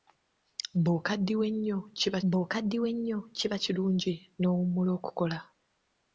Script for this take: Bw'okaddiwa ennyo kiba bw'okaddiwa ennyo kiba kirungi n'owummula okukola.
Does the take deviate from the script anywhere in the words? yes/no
no